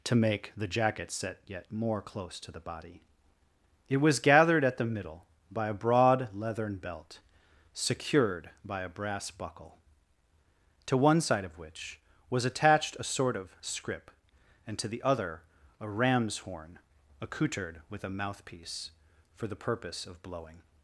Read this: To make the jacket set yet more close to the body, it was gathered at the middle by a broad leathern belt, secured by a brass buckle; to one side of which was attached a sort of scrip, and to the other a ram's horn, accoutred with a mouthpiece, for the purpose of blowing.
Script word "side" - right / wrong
right